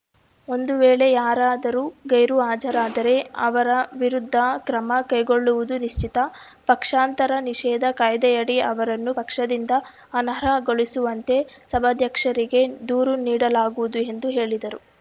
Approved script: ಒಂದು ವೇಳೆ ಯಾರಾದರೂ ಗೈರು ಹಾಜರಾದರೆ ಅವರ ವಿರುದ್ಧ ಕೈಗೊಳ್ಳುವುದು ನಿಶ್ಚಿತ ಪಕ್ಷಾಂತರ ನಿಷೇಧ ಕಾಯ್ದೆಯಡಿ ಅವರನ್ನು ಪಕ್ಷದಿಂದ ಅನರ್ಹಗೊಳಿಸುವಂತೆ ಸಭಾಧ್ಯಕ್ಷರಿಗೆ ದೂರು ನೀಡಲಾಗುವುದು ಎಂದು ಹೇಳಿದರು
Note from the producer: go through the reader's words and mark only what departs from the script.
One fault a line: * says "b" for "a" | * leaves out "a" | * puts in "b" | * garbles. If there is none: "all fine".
* puts in "ಕ್ರಮ"